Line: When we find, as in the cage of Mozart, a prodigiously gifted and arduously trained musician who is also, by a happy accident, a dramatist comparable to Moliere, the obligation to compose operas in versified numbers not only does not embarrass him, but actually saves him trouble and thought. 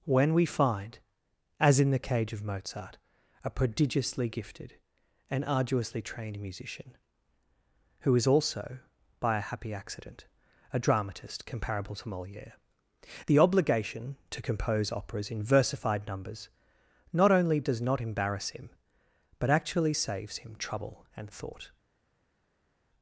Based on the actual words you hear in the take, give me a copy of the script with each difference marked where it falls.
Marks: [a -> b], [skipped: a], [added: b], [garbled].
When we find, as in the cage of Mozart, a prodigiously gifted and arduously trained musician who is also, by a happy accident, a dramatist comparable to Moliere, the obligation to compose operas in versified numbers not only does not embarrass him, but actually saves him trouble and thought.